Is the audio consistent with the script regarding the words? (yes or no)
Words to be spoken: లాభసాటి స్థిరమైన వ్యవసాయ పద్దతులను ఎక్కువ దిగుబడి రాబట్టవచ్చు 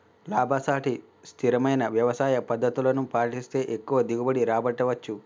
no